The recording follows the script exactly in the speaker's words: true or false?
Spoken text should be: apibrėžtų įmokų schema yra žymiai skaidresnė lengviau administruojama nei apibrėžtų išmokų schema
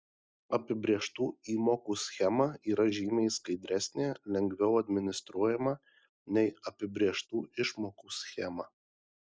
true